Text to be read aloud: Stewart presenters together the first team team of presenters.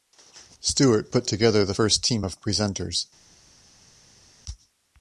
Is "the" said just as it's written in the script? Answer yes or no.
yes